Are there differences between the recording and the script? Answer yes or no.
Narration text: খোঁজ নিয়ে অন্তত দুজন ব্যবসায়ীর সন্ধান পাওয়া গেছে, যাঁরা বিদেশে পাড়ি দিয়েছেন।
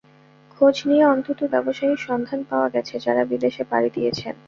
yes